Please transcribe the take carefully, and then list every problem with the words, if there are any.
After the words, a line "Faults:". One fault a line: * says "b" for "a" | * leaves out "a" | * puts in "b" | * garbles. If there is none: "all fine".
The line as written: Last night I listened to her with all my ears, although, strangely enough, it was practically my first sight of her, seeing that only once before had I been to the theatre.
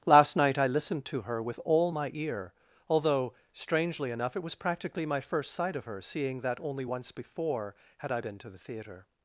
Last night I listened to her with all my ear, although, strangely enough, it was practically my first sight of her, seeing that only once before had I been to the theatre.
Faults:
* says "ear" for "ears"